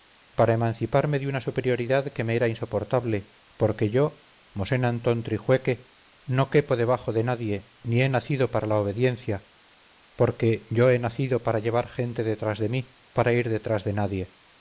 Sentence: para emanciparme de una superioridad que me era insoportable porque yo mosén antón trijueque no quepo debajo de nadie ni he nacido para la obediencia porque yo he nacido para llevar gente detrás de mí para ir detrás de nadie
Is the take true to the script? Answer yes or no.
yes